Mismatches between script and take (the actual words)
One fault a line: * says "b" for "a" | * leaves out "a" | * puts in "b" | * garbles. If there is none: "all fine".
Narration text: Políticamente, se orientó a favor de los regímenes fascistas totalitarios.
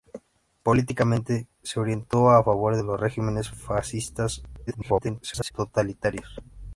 * garbles